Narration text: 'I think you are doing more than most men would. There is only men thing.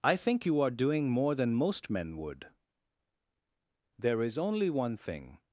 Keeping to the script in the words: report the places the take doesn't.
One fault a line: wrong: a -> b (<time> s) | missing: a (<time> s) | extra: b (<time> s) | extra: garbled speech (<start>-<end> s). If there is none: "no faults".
wrong: men -> one (4.7 s)